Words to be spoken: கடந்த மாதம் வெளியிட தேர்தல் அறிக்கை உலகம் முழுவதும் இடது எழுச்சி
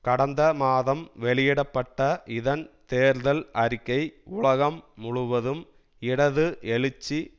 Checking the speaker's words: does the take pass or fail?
fail